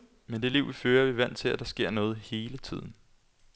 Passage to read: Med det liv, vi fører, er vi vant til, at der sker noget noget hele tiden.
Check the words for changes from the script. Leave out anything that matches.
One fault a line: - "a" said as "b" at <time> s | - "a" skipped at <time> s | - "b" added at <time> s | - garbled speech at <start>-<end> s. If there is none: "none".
- "noget" skipped at 2.2 s